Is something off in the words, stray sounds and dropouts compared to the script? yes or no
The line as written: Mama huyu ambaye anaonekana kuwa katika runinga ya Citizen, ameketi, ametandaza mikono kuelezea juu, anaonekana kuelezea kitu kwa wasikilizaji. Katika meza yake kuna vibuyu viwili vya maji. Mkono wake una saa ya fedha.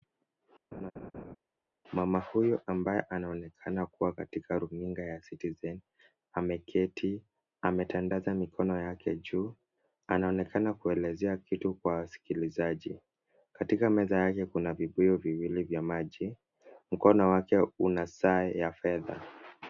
yes